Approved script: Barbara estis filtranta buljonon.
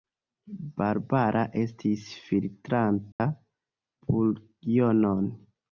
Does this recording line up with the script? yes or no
yes